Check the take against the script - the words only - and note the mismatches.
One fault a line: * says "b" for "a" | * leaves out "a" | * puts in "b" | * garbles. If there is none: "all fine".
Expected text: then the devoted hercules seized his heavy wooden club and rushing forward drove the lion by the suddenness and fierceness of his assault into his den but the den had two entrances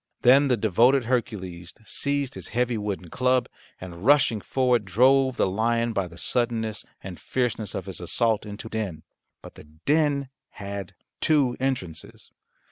* leaves out "his"